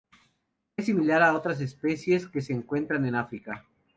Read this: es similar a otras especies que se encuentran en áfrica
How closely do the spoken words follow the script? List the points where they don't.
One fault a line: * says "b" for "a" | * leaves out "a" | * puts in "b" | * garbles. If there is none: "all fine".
all fine